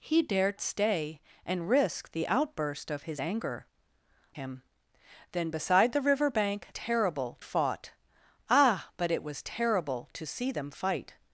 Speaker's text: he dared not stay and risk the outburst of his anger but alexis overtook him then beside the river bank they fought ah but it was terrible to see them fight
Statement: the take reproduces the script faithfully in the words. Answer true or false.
false